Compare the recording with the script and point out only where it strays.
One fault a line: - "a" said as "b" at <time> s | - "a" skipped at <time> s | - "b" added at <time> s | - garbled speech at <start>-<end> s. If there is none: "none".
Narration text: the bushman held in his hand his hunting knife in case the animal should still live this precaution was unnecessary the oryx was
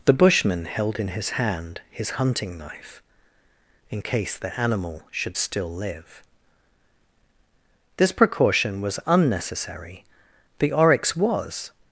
none